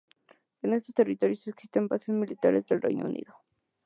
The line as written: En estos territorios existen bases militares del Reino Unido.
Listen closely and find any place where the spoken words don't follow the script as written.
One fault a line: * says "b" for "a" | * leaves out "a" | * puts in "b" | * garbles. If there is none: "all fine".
all fine